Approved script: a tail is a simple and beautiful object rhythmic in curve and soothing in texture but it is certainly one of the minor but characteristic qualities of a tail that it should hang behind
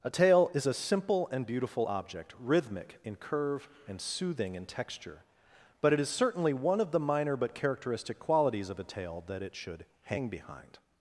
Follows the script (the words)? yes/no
yes